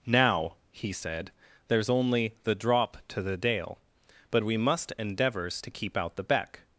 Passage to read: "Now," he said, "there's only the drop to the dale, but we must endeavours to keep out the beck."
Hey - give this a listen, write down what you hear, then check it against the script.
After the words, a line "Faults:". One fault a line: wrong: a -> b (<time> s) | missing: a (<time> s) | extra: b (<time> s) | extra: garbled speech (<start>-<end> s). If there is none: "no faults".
"Now," he said, "there's only the drop to the dale, but we must endeavours to keep out the beck."
Faults:
no faults